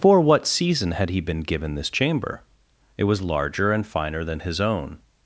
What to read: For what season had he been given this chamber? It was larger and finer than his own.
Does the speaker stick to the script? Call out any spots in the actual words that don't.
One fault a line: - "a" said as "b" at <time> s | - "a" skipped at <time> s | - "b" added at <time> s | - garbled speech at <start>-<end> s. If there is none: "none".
none